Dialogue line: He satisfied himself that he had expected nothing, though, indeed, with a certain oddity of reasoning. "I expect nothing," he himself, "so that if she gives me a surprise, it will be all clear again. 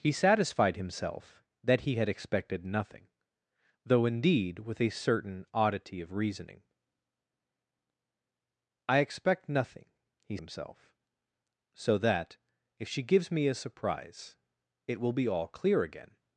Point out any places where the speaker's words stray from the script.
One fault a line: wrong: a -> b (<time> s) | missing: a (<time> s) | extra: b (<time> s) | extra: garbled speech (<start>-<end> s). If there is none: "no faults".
no faults